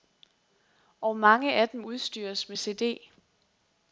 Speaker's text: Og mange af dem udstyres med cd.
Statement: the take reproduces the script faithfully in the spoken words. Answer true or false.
true